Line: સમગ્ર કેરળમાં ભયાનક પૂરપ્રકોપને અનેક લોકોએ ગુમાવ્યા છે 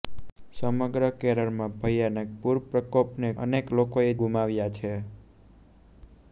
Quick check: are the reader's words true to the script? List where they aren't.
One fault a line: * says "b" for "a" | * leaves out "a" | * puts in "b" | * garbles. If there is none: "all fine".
all fine